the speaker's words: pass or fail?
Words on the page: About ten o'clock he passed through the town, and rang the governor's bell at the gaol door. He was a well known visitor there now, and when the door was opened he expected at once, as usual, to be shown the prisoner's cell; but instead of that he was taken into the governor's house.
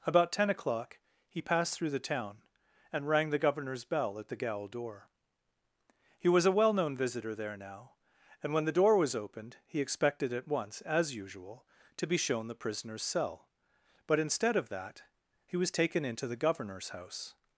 pass